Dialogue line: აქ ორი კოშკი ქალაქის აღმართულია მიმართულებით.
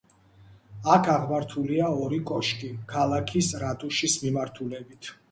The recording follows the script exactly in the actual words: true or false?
false